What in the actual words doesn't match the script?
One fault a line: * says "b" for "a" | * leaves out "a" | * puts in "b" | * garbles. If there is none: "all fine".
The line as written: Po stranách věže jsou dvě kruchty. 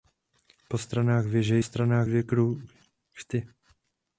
* says "stranách" for "jsou"